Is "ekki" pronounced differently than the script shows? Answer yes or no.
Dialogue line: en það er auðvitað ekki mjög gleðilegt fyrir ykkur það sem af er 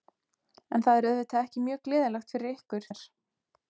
no